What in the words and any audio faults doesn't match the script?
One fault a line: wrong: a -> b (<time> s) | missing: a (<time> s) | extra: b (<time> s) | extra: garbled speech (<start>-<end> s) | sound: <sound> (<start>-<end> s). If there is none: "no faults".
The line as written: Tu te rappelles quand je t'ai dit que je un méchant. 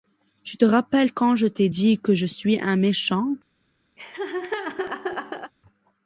extra: suis (2.2 s)
sound: laugh (4.0-5.5 s)